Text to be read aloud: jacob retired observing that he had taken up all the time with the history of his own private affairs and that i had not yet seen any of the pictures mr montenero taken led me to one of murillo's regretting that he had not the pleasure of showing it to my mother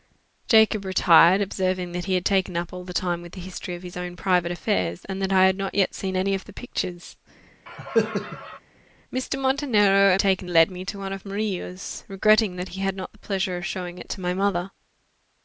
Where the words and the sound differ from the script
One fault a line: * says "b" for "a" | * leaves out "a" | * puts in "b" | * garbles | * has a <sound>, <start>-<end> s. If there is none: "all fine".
* has a cough, 7.7-8.6 s